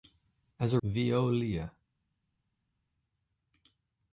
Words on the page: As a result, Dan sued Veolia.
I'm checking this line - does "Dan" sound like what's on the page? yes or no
no